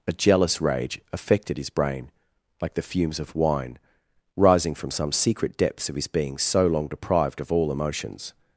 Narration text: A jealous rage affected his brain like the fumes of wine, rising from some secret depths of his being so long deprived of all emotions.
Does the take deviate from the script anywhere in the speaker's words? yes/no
no